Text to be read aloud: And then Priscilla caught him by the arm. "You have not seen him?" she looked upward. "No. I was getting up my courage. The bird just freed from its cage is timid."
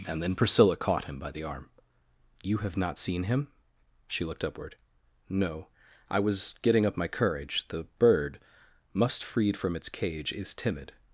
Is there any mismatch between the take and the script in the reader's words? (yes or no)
yes